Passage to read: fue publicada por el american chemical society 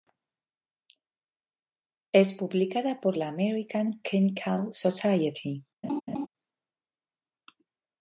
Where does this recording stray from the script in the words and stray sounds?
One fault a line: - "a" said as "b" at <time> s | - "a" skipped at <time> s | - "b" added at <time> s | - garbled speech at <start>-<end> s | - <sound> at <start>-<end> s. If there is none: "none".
- "fue" said as "es" at 2.1 s
- "el" said as "la" at 3.2 s
- laugh at 5.8-6.3 s